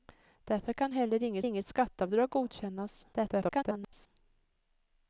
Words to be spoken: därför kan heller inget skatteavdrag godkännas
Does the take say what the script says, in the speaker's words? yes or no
no